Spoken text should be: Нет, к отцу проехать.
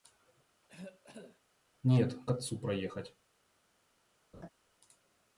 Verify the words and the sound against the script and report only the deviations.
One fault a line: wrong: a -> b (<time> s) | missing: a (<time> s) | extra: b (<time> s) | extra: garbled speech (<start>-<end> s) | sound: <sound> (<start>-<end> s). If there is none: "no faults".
sound: cough (0.6-1.4 s)
sound: laugh (4.3-4.5 s)